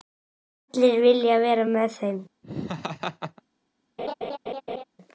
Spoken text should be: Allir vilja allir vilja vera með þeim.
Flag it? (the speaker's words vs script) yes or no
yes